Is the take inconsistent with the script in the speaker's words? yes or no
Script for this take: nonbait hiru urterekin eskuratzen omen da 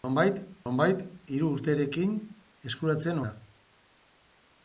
yes